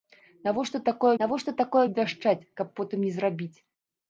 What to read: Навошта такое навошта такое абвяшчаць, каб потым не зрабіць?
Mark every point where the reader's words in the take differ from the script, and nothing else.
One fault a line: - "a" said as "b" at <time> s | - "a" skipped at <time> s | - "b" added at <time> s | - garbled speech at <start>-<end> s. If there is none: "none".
none